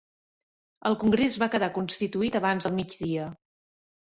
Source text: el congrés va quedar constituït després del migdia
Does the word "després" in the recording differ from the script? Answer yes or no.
yes